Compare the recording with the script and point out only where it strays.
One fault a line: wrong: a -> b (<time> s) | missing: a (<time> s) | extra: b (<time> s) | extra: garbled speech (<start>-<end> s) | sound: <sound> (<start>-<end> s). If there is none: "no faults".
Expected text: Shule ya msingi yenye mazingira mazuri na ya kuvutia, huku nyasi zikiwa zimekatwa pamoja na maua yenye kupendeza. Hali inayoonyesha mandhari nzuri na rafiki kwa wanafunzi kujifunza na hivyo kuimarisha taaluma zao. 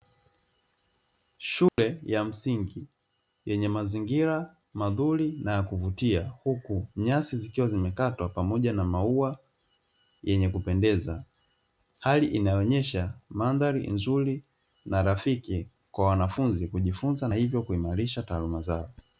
sound: dropout (1.7-1.8 s)
missing: na (17.3 s)